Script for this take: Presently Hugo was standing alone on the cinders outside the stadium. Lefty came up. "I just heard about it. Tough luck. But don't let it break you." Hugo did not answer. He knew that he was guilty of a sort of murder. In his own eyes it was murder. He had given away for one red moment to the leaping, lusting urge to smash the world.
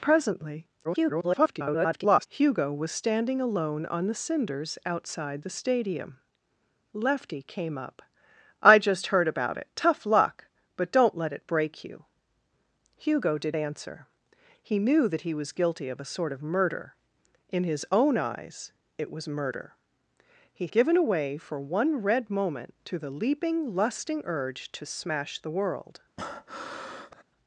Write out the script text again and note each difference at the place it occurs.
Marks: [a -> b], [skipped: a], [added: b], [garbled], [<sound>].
Presently [garbled] Hugo was standing alone on the cinders outside the stadium. Lefty came up. "I just heard about it. Tough luck. But don't let it break you." Hugo did [skipped: not] answer. He knew that he was guilty of a sort of murder. In his own eyes it was murder. He [skipped: had] given away for one red moment to the leaping, lusting urge to smash the world. [breath]